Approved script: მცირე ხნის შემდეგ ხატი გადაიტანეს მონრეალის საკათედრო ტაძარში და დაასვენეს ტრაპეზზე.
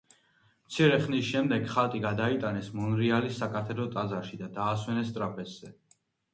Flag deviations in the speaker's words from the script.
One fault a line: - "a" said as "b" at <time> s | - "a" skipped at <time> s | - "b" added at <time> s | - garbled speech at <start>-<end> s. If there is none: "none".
none